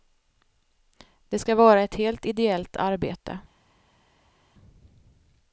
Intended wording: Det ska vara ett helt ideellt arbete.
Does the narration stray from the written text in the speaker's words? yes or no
no